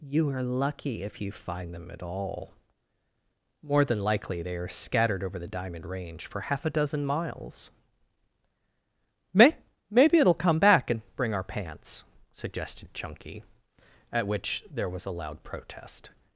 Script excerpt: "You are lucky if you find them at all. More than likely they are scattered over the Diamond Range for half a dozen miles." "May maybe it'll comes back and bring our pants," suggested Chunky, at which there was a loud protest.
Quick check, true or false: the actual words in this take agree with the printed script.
false